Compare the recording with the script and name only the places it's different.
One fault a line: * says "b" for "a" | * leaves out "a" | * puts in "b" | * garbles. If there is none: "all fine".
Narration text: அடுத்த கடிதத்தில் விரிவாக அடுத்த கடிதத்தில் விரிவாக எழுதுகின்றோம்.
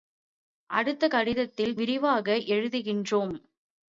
* leaves out "அடுத்த கடிதத்தில் விரிவாக"